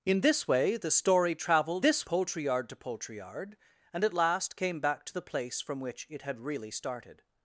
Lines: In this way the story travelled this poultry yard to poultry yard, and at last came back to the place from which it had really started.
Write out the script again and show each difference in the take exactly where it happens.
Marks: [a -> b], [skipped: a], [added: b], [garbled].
In this way the story travelled this poultry yard to poultry yard, and at last came back to the place from which it had really started.